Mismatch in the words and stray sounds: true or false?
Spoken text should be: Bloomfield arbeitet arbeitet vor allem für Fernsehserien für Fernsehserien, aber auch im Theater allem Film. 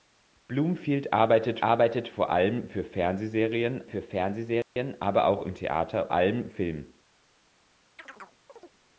true